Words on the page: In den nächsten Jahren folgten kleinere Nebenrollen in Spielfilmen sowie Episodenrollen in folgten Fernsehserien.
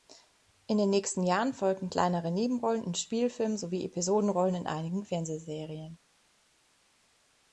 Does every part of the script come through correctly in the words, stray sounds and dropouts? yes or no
no